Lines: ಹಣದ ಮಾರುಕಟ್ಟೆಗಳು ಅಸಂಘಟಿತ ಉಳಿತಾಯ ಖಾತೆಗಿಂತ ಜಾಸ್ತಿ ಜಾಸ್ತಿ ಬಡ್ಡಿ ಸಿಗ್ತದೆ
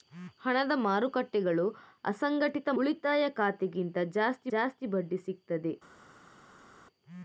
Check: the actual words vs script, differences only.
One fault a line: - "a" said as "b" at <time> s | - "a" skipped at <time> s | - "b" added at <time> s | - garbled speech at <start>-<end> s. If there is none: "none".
none